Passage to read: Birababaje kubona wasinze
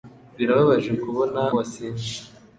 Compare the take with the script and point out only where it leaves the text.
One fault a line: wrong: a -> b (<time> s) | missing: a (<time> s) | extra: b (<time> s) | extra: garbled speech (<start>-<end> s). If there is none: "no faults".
no faults